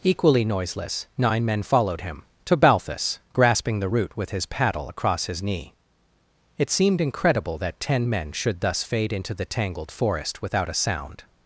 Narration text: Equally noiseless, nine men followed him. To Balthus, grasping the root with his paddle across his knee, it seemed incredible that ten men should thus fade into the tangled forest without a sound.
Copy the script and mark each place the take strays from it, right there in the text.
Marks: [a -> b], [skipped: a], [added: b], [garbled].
Equally noiseless, nine men followed him. To Balthus, grasping the root with his paddle across his knee, it seemed incredible that ten men should thus fade into the tangled forest without a sound.